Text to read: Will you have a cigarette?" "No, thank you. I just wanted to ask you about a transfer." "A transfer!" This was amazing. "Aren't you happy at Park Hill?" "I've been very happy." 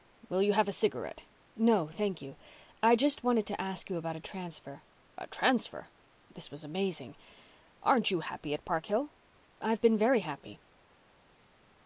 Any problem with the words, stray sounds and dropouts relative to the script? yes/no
no